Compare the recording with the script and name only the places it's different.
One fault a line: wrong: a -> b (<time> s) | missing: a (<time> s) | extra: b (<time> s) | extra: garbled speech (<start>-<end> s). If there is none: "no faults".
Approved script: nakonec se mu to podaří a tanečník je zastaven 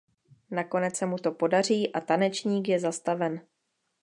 no faults